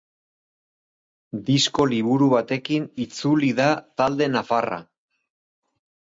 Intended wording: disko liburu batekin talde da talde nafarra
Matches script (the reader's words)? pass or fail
fail